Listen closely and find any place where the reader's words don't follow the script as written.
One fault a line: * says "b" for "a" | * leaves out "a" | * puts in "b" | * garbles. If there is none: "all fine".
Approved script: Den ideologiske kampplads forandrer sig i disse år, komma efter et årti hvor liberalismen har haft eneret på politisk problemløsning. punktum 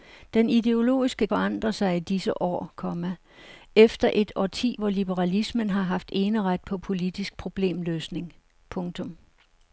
* leaves out "kampplads"